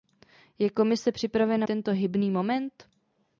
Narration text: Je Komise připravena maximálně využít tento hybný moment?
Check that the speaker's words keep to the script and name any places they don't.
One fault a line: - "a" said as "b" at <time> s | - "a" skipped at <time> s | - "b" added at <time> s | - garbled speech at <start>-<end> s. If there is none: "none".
- "maximálně využít" skipped at 1.7 s